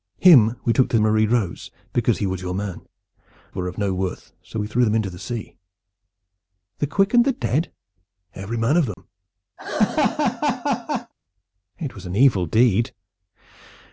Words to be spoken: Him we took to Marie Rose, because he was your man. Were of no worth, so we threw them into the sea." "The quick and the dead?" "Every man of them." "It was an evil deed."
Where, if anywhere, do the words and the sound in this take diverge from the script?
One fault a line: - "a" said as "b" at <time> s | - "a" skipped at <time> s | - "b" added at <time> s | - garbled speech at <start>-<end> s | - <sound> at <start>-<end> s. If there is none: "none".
- dropout at 8.9-9.0 s
- laugh at 9.6-11.1 s